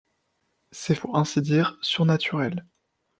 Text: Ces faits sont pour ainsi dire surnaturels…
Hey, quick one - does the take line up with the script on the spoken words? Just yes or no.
no